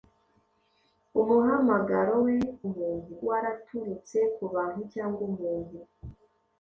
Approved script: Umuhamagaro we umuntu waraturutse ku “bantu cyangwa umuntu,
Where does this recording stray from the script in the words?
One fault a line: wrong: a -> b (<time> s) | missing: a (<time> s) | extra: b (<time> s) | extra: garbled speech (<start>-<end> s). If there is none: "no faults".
no faults